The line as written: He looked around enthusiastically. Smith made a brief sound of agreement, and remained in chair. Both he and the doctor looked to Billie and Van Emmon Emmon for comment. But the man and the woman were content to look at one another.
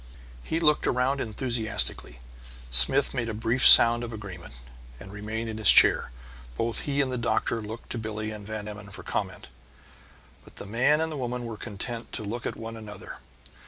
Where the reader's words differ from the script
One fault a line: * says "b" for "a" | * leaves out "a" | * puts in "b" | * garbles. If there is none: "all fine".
* puts in "his"
* leaves out "Emmon"